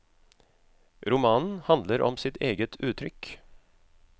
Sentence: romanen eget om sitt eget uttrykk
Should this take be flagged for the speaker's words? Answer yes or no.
yes